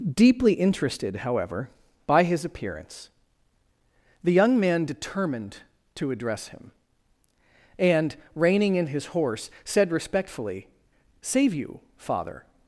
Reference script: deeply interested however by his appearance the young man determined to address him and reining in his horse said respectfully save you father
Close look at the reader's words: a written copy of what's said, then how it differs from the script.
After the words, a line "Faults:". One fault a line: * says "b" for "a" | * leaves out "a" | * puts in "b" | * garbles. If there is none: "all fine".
deeply interested however by his appearance the young man determined to address him and reining in his horse said respectfully save you father
Faults:
all fine